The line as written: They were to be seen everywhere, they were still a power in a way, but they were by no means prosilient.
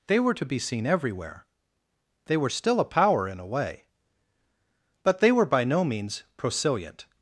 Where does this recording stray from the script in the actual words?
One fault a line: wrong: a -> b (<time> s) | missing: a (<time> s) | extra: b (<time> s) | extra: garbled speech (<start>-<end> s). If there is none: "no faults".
no faults